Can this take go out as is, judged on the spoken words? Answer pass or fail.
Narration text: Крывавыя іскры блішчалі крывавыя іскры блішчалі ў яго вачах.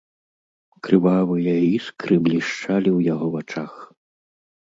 fail